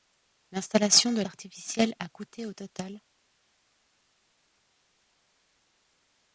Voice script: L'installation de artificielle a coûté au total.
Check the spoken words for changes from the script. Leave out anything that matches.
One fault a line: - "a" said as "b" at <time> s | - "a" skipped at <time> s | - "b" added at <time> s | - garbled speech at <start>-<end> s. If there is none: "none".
none